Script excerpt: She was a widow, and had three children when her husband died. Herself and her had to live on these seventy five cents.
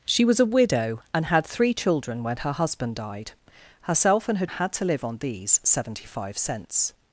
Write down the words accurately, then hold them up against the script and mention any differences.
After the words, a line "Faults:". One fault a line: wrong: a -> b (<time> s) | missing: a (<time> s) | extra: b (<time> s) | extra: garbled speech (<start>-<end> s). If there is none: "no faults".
She was a widow, and had three children when her husband died. Herself and her had to live on these seventy five cents.
Faults:
no faults